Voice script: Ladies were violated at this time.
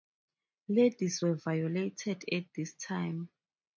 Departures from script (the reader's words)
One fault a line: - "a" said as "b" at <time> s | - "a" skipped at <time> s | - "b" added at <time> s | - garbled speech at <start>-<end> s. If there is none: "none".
none